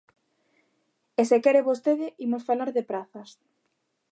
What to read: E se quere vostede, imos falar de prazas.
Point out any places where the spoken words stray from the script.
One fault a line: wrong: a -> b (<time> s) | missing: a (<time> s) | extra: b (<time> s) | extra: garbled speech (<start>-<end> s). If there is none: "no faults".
no faults